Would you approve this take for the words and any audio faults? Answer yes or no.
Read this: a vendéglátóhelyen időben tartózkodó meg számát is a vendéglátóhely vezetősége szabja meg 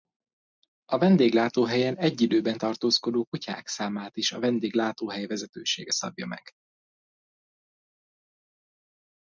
no